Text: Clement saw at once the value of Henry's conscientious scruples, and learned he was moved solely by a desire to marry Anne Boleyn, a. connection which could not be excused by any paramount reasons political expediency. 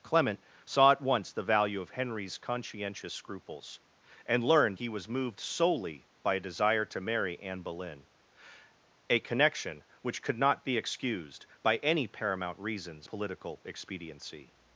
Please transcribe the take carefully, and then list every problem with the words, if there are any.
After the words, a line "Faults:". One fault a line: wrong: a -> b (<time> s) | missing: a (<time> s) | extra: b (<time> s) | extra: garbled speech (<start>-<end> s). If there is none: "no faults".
Clement saw at once the value of Henry's conscientious scruples, and learned he was moved solely by a desire to marry Anne Boleyn, a. connection which could not be excused by any paramount reasons political expediency.
Faults:
no faults